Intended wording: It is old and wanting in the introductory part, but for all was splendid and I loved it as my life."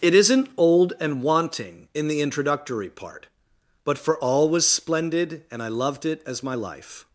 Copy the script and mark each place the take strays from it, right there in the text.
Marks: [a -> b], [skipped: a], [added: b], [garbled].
It [is -> isn't] old and wanting in the introductory part, but for all was splendid and I loved it as my life."